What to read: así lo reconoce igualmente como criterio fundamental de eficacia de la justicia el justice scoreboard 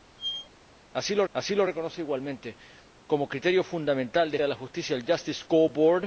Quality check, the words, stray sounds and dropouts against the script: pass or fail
fail